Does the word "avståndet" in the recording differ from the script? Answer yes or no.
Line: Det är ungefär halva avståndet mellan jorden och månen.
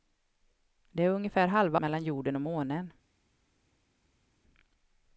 yes